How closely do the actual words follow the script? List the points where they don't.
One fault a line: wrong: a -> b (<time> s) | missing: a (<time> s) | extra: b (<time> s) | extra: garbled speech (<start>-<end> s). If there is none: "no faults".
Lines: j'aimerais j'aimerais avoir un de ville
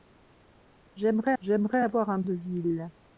no faults